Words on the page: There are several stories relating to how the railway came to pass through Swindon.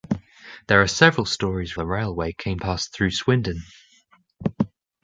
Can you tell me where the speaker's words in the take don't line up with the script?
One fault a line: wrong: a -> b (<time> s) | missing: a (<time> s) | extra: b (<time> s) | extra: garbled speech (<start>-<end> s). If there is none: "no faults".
missing: relating to how (1.8 s)
missing: to (2.6 s)